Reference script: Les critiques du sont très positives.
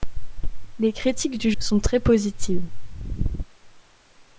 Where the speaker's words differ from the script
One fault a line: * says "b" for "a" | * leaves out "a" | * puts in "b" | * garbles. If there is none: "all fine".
all fine